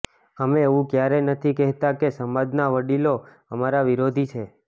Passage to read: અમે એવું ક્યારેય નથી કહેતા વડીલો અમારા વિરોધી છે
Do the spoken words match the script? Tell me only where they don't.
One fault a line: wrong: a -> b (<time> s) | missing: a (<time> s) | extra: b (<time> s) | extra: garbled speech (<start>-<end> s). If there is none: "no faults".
extra: કે સમાજના (2.0 s)